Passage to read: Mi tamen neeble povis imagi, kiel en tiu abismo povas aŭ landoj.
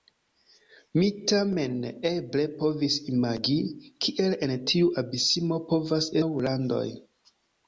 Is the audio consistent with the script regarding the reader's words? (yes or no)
yes